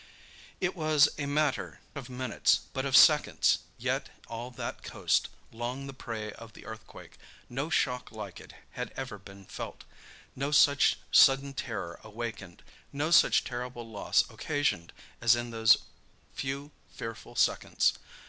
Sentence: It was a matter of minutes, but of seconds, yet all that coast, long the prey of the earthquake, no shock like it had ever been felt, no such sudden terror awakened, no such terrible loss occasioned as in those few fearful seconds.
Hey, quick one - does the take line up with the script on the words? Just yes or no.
yes